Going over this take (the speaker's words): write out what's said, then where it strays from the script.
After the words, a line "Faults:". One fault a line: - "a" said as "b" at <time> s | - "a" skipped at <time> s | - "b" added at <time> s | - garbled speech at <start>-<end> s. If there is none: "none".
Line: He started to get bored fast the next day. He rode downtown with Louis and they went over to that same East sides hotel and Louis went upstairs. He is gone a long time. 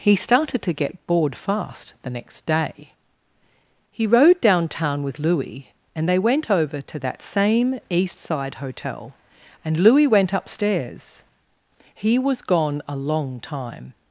He started to get bored fast the next day. He rode downtown with Louis and they went over to that same East side hotel and Louis went upstairs. He was gone a long time.
Faults:
- "sides" said as "side" at 8.2 s
- "is" said as "was" at 12.2 s